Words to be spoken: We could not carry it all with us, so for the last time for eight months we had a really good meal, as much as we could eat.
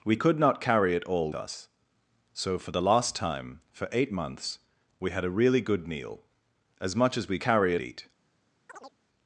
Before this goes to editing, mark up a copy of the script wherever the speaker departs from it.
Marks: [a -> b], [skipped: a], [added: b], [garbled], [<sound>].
We could not carry it all [skipped: with] us, so for the last time for eight months we had a really good meal, as much as we [could -> carry] eat. [chirp]